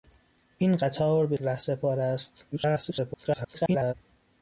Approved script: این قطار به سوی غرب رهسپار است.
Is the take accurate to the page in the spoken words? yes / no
no